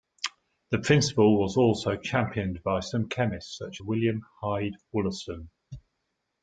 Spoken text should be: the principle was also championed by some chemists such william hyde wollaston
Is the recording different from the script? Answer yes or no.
no